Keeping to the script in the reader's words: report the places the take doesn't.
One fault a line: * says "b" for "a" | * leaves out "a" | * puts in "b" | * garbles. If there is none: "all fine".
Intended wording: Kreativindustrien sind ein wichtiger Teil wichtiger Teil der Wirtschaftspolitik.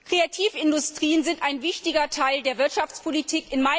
* leaves out "wichtiger Teil"